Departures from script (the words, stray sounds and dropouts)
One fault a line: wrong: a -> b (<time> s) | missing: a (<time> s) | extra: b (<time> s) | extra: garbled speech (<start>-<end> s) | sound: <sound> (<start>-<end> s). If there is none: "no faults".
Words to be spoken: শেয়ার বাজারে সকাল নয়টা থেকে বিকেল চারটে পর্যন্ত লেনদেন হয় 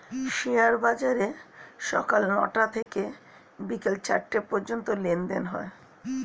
sound: dropout (2.8-2.9 s)